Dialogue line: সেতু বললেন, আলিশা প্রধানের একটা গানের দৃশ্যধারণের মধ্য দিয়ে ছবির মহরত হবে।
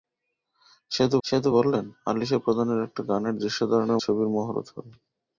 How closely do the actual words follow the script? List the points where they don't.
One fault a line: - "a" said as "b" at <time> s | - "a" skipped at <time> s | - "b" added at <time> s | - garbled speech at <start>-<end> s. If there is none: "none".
- "সেতু" added at 1.2 s
- "মধ্য দিয়ে" skipped at 4.0 s